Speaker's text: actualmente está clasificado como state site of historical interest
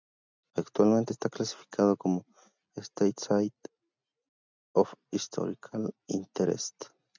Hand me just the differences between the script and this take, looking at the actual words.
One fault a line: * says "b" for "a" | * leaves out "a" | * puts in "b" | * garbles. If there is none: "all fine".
all fine